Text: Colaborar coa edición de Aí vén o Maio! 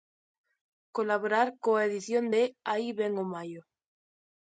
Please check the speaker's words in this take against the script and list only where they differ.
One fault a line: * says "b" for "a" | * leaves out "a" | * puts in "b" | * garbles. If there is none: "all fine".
all fine